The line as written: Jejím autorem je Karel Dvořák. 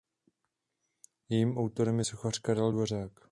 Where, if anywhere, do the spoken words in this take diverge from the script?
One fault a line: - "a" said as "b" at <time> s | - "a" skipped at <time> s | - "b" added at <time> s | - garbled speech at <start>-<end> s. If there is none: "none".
- "sochař" added at 2.0 s